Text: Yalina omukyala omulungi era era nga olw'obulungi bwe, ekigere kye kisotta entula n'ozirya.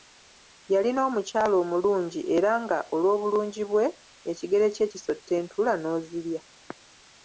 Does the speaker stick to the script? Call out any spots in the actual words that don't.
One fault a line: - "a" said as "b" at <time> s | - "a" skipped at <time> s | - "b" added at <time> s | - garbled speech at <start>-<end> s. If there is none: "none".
- "era" skipped at 2.5 s